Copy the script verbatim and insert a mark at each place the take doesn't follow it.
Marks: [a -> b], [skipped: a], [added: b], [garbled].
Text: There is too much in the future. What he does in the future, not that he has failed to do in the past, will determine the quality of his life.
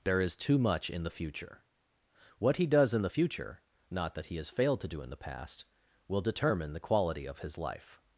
There is too much in the future. What he does in the future, not that he has failed to do in the past, will determine the quality of his life.